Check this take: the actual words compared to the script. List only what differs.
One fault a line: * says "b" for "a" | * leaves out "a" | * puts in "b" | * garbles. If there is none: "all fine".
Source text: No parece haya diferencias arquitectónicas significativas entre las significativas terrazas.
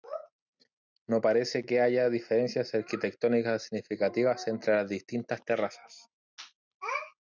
* puts in "que"
* says "distintas" for "significativas"